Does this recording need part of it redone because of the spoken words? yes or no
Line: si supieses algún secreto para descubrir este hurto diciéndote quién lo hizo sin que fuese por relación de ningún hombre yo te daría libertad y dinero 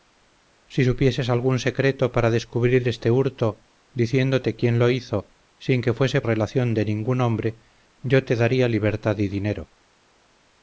yes